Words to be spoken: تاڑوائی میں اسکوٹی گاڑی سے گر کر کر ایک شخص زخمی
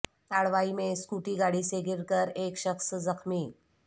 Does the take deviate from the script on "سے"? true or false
false